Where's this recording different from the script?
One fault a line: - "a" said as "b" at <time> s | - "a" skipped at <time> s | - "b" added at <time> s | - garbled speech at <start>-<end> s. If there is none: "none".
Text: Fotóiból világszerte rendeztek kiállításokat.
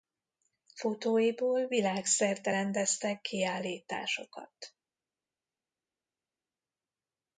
none